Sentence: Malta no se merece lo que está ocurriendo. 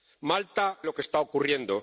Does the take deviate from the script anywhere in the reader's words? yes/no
yes